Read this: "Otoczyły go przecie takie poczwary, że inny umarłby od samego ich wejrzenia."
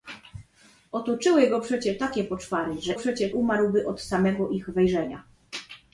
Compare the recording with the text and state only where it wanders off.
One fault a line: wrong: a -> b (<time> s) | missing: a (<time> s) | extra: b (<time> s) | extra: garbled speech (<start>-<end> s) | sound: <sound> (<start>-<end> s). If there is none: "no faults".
wrong: inny -> przecie (2.9 s)